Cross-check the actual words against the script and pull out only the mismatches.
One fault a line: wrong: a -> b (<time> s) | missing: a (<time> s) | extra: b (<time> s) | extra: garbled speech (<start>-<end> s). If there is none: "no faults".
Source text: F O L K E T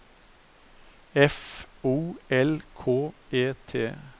no faults